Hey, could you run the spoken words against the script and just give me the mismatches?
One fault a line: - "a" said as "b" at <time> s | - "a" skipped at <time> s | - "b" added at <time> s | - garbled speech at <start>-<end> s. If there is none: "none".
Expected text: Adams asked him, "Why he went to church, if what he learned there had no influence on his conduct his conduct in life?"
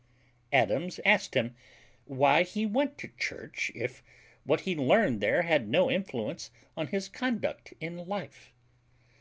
- "his conduct" skipped at 7.7 s